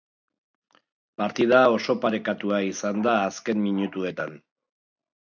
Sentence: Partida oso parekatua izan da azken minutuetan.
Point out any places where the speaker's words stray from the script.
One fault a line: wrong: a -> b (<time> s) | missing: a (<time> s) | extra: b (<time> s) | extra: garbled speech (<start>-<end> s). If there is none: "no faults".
no faults